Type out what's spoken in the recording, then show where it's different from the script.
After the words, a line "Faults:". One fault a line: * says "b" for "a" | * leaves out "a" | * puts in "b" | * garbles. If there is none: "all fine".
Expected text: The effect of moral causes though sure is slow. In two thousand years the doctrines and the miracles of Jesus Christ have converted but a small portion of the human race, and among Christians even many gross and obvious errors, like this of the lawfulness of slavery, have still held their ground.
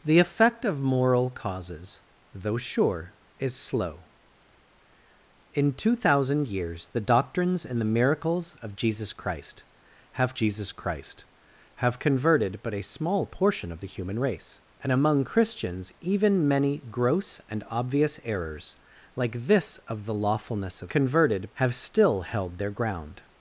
The effect of moral causes though sure is slow. In two thousand years the doctrines and the miracles of Jesus Christ have Jesus Christ have converted but a small portion of the human race, and among Christians even many gross and obvious errors, like this of the lawfulness of converted, have still held their ground.
Faults:
* puts in "Jesus Christ have"
* says "converted" for "slavery"